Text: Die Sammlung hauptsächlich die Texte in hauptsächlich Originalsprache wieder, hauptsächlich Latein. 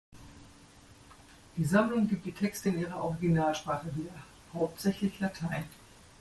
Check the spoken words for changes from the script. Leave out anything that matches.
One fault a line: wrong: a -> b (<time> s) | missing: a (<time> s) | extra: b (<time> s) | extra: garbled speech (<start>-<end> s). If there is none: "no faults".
wrong: hauptsächlich -> gibt (2.1 s)
wrong: hauptsächlich -> ihrer (2.8 s)